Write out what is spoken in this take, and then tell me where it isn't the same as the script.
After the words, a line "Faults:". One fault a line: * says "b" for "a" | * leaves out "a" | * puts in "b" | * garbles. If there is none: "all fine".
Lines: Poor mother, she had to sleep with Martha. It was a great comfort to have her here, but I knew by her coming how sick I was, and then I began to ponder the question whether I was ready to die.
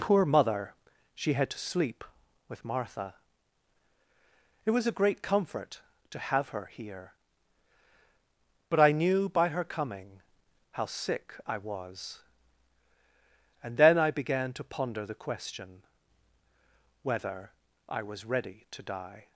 Poor mother, she had to sleep with Martha. It was a great comfort to have her here, but I knew by her coming how sick I was, and then I began to ponder the question whether I was ready to die.
Faults:
all fine